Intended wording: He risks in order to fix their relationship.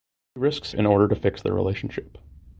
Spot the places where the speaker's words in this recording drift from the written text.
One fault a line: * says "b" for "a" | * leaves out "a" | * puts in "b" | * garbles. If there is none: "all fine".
all fine